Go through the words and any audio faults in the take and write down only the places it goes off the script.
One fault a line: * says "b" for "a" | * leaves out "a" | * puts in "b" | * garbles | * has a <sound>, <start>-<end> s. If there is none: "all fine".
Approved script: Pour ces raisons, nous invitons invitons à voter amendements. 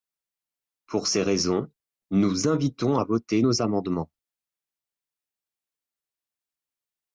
* leaves out "invitons"
* puts in "nos"